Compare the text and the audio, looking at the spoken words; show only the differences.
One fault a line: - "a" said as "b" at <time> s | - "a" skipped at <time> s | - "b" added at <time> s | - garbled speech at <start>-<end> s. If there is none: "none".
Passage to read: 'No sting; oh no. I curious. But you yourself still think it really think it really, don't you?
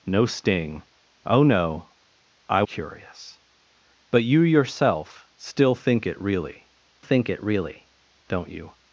none